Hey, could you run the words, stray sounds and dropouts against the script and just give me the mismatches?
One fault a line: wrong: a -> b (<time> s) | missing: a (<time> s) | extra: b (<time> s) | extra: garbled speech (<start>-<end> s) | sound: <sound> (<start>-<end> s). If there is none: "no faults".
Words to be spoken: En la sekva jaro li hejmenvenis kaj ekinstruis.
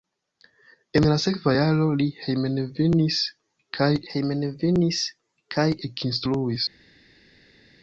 extra: hejmenvenis kaj (4.1 s)